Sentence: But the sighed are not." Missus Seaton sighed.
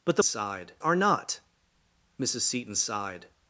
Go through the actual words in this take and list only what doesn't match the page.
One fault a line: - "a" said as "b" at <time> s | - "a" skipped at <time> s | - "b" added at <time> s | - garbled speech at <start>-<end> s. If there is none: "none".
none